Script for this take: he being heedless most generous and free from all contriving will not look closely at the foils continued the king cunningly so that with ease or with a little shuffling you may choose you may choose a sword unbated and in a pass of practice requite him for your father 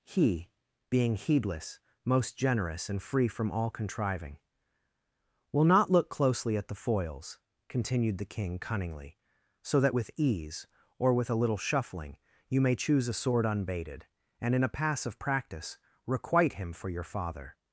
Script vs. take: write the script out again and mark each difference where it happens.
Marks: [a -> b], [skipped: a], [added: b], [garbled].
he being heedless most generous and free from all contriving will not look closely at the foils continued the king cunningly so that with ease or with a little shuffling you may choose [skipped: you may choose] a sword unbated and in a pass of practice requite him for your father